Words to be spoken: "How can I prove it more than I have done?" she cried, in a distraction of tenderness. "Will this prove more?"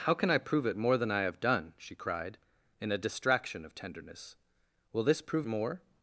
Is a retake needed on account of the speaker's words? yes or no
no